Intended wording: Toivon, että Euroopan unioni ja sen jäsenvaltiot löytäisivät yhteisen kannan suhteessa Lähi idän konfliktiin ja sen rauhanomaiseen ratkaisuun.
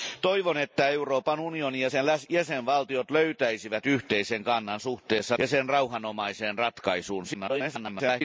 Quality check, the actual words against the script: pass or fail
fail